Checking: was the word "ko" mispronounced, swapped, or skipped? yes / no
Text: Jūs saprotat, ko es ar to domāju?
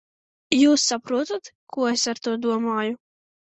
no